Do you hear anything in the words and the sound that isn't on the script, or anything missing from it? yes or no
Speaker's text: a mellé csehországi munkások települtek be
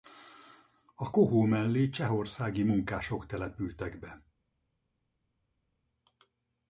yes